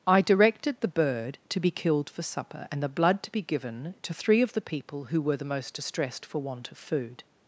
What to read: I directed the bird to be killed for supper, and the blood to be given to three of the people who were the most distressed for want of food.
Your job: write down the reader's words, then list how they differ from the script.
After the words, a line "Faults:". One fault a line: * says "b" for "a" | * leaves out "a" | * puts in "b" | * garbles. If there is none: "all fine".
I directed the bird to be killed for supper, and the blood to be given to three of the people who were the most distressed for want of food.
Faults:
all fine